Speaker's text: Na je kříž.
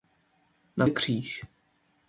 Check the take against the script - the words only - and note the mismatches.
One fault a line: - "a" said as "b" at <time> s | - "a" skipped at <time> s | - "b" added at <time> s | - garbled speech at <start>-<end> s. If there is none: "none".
none